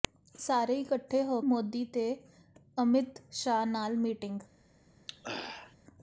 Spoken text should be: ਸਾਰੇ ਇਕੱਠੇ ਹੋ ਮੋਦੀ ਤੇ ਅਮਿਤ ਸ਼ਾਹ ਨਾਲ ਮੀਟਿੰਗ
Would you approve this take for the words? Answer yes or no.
yes